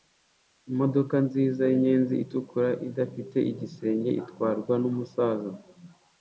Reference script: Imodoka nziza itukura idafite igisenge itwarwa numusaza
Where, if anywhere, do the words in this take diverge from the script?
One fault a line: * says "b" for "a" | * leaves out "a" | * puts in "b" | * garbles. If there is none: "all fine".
* puts in "yinyenzi"